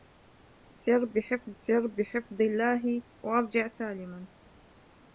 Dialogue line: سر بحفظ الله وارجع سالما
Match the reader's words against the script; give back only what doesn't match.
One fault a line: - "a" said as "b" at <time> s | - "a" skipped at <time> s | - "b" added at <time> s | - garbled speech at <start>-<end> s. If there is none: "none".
- "سر بحفظ" added at 1.6 s